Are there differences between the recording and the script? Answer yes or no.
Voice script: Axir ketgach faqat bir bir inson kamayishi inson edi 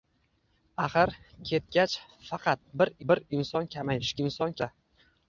no